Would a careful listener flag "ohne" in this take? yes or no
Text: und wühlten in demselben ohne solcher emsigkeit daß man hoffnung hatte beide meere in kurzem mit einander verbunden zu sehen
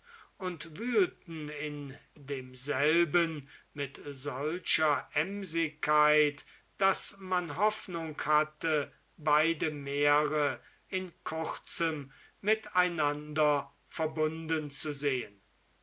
yes